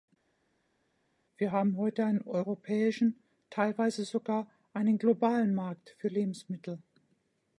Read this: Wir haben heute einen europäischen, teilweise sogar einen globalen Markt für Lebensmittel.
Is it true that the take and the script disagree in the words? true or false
false